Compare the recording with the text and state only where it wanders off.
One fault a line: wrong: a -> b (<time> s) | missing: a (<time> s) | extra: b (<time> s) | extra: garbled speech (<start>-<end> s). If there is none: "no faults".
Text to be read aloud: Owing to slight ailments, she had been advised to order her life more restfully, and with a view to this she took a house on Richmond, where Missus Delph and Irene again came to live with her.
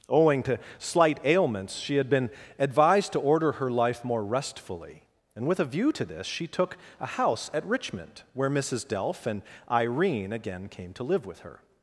wrong: on -> at (7.5 s)